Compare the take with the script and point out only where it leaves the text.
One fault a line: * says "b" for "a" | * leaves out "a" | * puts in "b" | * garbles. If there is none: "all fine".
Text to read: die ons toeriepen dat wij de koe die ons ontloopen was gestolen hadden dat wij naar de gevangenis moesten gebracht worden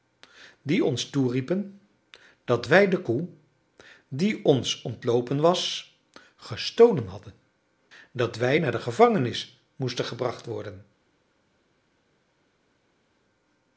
all fine